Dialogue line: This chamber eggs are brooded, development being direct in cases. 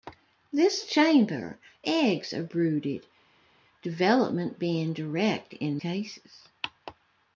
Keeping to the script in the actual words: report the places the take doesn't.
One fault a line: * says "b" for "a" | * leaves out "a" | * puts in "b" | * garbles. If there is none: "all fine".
all fine